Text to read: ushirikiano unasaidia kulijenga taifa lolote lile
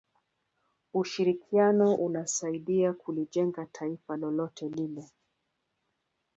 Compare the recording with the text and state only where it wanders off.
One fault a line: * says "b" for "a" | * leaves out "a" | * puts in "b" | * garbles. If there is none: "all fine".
all fine